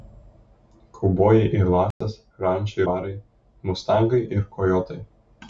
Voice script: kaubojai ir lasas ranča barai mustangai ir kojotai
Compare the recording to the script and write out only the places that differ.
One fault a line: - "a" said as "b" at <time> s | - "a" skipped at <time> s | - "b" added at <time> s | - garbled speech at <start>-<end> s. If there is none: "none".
none